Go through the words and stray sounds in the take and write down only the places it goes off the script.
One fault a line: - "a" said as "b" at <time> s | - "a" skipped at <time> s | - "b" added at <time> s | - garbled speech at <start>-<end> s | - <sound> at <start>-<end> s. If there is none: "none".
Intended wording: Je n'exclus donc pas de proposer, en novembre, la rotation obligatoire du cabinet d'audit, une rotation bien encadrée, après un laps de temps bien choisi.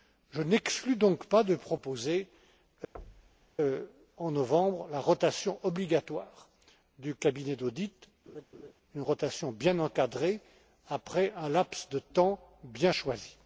- thud at 2.9-3.5 s
- laugh at 8.3-8.7 s